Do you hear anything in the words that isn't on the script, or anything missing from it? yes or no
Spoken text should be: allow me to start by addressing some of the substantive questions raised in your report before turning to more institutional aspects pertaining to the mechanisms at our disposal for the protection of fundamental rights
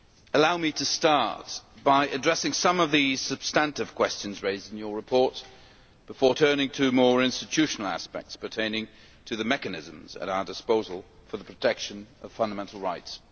no